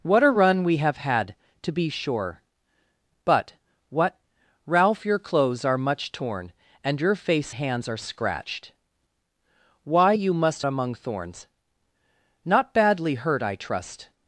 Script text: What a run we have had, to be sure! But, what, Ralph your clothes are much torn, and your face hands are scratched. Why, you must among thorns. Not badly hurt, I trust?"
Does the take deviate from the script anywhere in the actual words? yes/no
no